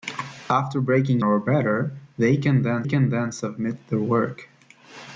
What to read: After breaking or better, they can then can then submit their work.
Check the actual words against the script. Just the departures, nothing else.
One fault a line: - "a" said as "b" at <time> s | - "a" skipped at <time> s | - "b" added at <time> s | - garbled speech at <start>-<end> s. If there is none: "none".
none